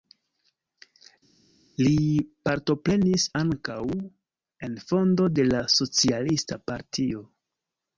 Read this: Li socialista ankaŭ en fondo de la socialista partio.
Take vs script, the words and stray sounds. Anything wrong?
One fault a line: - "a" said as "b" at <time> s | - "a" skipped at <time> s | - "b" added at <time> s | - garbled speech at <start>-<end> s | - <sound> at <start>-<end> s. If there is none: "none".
- "socialista" said as "partoprenis" at 2.5 s